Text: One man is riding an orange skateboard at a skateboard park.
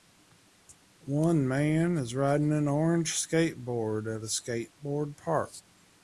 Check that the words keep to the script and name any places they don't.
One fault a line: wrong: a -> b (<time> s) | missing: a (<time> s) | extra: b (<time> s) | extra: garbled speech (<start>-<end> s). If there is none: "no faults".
no faults